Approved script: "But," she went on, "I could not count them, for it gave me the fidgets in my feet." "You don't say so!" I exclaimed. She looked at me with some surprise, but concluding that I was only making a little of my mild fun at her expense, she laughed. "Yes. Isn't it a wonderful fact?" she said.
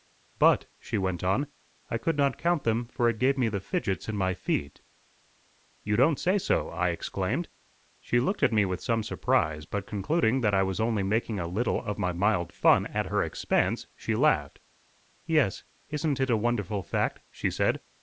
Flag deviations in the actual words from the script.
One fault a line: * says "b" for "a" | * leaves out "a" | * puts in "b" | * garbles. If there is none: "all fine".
all fine